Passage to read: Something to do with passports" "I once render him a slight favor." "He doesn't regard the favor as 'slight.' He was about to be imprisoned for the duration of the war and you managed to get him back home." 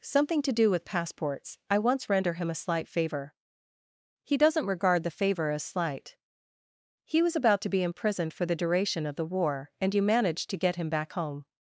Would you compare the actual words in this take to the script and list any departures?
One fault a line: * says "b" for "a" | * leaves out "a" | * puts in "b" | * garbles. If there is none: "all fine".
all fine